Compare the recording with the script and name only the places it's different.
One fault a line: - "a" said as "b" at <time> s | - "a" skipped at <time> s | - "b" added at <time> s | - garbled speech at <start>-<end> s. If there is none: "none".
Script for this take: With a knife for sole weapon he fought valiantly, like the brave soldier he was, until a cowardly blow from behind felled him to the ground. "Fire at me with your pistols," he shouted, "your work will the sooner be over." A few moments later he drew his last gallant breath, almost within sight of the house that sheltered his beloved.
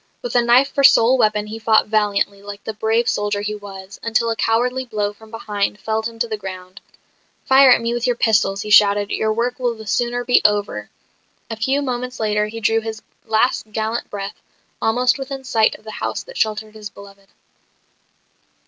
none